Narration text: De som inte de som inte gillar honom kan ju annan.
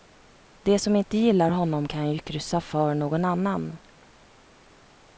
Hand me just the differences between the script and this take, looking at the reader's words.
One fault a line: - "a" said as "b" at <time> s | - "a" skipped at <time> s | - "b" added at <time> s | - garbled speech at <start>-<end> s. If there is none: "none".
- "de som inte" skipped at 1.2 s
- "kryssa för någon" added at 2.2 s